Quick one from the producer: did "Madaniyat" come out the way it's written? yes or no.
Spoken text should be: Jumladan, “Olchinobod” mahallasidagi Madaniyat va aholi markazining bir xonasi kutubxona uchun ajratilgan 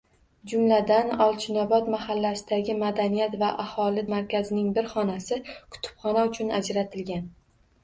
yes